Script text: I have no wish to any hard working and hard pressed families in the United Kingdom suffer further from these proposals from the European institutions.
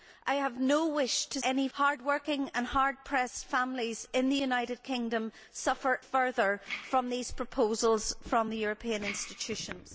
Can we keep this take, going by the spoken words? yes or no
yes